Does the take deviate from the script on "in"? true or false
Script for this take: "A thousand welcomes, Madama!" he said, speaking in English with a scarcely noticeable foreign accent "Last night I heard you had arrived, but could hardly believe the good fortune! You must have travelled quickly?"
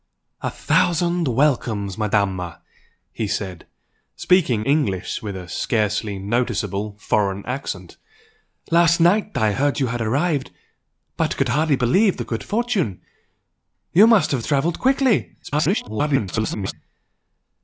true